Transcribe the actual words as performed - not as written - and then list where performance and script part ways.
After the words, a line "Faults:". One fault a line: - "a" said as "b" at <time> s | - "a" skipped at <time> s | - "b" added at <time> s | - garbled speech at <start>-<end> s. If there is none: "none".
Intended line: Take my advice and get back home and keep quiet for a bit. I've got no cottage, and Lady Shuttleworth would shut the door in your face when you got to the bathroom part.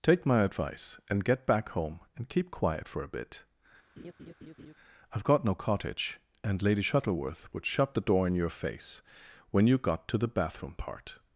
Take my advice and get back home and keep quiet for a bit. I've got no cottage, and Lady Shuttleworth would shut the door in your face when you got to the bathroom part.
Faults:
none